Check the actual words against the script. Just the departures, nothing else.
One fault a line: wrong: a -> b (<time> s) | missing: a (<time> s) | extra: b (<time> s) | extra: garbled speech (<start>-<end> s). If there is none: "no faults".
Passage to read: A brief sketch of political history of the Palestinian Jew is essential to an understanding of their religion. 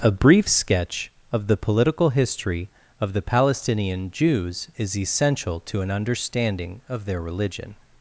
extra: the (1.5 s)
wrong: Jew -> Jews (4.1 s)